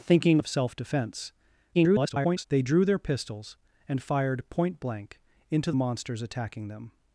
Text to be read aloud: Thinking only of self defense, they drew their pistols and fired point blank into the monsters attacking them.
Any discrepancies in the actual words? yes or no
yes